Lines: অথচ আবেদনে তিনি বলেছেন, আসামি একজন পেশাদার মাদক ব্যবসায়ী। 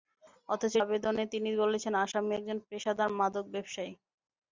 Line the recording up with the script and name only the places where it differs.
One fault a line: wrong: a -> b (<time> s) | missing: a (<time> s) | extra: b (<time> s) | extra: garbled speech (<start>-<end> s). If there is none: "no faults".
no faults